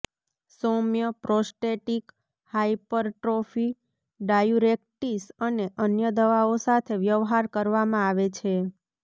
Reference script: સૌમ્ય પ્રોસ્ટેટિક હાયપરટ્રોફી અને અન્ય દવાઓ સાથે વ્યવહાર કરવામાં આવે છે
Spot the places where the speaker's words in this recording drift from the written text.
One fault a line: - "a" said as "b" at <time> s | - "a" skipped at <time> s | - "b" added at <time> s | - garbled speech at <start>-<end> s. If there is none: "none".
- "ડાયુરેટીક્સ" added at 4.2 s